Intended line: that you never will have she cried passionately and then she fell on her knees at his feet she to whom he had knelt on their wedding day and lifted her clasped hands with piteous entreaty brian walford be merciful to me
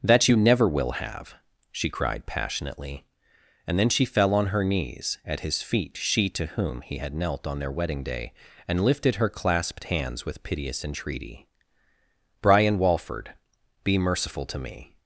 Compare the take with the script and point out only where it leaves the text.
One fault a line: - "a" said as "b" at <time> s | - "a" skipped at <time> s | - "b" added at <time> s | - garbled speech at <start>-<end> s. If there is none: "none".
none